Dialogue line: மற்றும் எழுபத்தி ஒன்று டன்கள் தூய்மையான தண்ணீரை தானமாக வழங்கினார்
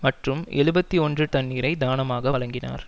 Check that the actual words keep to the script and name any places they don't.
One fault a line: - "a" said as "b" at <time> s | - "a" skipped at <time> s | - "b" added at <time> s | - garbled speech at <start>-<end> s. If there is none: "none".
- "டன்கள் தூய்மையான" skipped at 1.2 s